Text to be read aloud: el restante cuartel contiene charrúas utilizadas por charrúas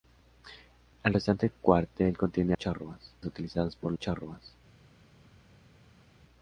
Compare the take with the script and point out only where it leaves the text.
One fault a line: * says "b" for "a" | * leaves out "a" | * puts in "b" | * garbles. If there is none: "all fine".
all fine